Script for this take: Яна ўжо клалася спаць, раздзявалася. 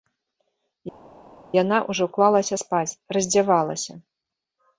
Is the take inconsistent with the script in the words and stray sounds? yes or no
no